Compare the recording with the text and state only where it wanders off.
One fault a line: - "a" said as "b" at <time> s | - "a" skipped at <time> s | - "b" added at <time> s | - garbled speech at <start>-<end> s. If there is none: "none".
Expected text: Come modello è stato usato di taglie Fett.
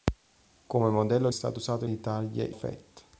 none